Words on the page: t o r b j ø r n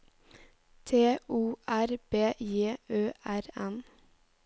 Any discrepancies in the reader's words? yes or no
no